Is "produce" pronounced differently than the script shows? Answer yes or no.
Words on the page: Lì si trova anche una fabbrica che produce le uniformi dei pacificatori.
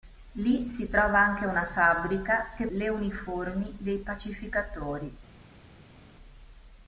yes